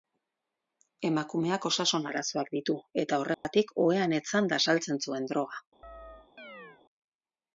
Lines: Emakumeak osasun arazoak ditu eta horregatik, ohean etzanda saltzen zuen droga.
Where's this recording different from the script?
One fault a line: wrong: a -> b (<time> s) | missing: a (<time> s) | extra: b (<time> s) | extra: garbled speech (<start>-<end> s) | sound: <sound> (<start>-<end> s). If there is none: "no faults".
sound: dropout (3.3-3.4 s)
sound: chirp (5.8-6.8 s)